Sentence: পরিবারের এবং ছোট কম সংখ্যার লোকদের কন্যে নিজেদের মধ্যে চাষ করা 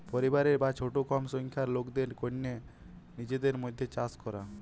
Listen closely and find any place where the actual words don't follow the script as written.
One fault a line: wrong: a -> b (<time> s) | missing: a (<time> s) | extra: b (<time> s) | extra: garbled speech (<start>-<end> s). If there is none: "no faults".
wrong: এবং -> বা (0.6 s)